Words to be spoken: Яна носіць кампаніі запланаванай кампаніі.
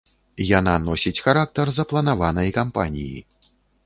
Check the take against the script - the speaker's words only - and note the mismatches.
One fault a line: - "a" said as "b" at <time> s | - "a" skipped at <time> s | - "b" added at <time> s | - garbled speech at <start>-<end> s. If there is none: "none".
- "кампаніі" said as "характар" at 1.2 s